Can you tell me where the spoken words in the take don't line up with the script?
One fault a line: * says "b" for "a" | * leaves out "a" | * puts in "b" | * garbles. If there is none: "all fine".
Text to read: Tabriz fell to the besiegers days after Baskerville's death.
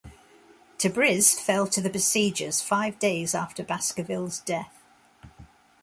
* puts in "five"